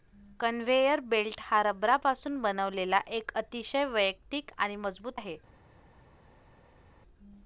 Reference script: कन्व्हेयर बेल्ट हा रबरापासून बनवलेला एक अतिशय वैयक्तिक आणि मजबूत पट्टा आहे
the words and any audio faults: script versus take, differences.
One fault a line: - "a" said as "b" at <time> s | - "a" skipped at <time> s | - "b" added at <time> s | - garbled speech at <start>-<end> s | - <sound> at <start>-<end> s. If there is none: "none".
- "पट्टा" skipped at 5.1 s